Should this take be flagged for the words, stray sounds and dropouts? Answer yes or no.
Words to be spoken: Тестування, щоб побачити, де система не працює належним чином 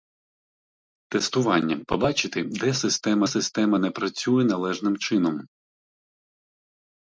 yes